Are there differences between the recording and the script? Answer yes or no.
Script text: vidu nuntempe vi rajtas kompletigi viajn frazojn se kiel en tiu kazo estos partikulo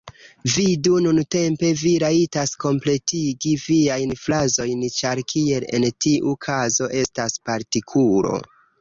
yes